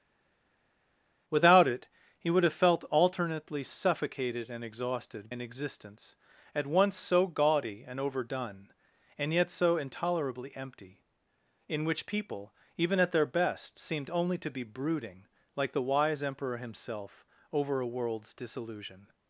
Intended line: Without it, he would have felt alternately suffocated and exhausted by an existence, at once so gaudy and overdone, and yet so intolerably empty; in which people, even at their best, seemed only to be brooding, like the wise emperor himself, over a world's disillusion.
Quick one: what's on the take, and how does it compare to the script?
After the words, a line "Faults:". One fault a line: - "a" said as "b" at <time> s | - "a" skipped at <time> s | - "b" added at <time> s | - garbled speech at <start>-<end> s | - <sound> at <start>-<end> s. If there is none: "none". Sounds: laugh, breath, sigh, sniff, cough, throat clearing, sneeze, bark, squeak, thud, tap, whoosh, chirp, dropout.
Without it, he would have felt alternately suffocated and exhausted an existence, at once so gaudy and overdone, and yet so intolerably empty; in which people, even at their best, seemed only to be brooding, like the wise emperor himself, over a world's disillusion.
Faults:
- "by" skipped at 5.3 s